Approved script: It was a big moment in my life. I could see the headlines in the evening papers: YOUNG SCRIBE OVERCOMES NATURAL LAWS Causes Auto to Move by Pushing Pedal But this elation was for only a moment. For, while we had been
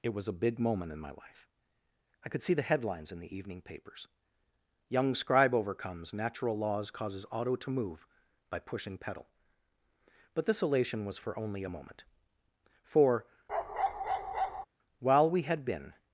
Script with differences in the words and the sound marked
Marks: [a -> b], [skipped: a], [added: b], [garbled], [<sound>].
It was a big moment in my life. I could see the headlines in the evening papers: YOUNG SCRIBE OVERCOMES NATURAL LAWS Causes Auto to Move by Pushing Pedal But this elation was for only a moment. For, [bark] while we had been